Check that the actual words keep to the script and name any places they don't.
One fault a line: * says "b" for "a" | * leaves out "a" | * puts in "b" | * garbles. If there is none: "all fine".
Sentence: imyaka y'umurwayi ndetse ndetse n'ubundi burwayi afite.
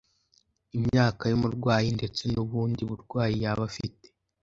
* leaves out "ndetse"
* puts in "yaba"